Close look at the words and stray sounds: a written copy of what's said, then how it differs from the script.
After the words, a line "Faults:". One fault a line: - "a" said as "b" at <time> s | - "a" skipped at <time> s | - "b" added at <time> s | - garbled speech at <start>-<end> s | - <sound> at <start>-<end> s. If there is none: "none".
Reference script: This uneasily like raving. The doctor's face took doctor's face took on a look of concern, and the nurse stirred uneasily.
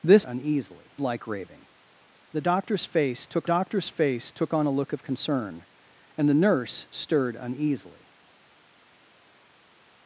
This uneasily like raving. The doctor's face took doctor's face took on a look of concern, and the nurse stirred uneasily.
Faults:
none